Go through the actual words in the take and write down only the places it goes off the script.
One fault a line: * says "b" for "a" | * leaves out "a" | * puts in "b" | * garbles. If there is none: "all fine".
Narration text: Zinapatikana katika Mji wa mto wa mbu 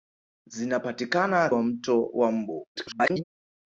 * leaves out "katika Mji"
* garbles